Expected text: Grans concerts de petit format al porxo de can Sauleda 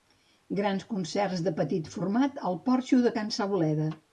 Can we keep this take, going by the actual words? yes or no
yes